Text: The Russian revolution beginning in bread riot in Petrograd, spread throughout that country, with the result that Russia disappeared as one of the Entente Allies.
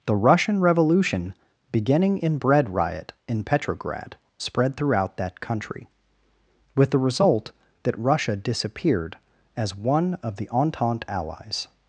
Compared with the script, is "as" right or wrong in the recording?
right